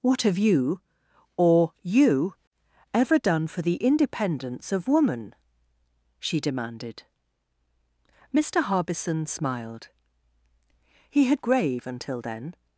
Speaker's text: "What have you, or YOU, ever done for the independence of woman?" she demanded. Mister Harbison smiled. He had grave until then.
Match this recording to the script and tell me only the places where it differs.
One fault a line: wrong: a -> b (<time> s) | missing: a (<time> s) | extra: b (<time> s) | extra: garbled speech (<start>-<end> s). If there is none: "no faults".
no faults